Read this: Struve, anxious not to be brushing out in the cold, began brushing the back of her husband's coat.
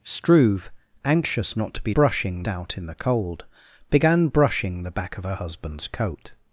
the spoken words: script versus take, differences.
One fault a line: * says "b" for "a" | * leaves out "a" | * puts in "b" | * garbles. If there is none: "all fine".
all fine